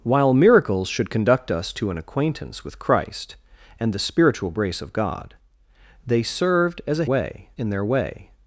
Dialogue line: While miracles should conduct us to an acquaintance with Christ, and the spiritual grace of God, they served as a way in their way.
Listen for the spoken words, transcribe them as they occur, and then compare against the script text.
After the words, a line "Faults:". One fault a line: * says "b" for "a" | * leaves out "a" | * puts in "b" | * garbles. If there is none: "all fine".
While miracles should conduct us to an acquaintance with Christ, and the spiritual grace of God, they served as a way in their way.
Faults:
all fine